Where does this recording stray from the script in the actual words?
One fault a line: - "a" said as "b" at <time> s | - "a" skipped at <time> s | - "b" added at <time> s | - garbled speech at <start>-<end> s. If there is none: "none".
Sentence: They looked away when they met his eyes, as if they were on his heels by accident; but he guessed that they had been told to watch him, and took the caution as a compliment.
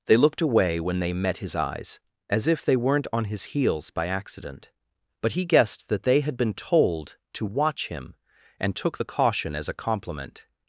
- "were" said as "weren't" at 2.8 s